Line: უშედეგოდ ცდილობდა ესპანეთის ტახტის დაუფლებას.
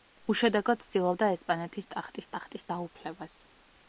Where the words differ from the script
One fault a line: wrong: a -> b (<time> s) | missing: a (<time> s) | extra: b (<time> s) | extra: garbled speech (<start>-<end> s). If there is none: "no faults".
extra: ტახტის (2.3 s)